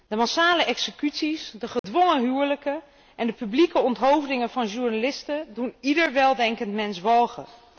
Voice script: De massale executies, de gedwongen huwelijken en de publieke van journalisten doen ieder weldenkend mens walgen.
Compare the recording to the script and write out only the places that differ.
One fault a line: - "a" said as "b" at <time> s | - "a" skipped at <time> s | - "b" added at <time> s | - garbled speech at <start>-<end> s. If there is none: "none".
- "onthoofdingen" added at 3.8 s